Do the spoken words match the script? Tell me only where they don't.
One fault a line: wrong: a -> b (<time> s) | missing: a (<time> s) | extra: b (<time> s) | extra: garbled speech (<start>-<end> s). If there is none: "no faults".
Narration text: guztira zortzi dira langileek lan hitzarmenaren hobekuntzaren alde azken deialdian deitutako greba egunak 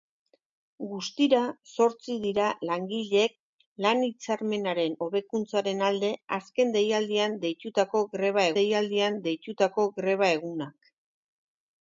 extra: deialdian deitutako greba (8.6 s)